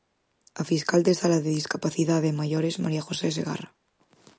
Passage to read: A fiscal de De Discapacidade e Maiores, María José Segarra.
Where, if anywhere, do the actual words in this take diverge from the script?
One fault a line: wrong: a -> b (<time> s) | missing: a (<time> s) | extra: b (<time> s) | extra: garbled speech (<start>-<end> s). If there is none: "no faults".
extra: Sala (1.2 s)